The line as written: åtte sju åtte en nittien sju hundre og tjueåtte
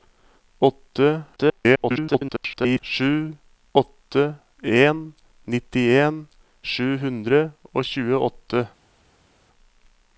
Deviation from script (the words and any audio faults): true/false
true